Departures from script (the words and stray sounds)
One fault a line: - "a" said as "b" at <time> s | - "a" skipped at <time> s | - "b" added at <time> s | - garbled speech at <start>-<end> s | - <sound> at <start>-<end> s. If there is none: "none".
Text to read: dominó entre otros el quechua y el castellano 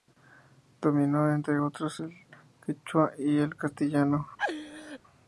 - laugh at 4.4-5.0 s